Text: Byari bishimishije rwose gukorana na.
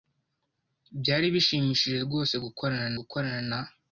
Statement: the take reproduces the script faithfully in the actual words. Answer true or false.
false